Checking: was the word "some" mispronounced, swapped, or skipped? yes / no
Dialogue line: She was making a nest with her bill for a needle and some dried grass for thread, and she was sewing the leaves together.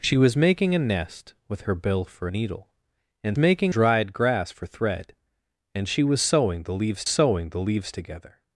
yes